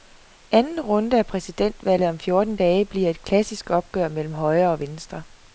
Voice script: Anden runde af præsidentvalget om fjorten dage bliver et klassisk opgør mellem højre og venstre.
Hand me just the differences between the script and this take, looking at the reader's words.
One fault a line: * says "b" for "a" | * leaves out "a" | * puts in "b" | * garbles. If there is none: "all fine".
all fine